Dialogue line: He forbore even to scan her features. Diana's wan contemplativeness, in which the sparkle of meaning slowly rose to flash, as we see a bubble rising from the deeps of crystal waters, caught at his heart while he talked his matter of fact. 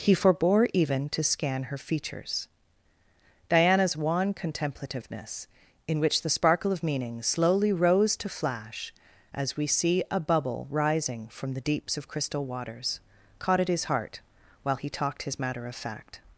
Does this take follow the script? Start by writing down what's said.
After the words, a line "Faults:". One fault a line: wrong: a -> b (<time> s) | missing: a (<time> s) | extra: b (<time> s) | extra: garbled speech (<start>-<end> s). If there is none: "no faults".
He forbore even to scan her features. Diana's wan contemplativeness, in which the sparkle of meaning slowly rose to flash, as we see a bubble rising from the deeps of crystal waters, caught at his heart while he talked his matter of fact.
Faults:
no faults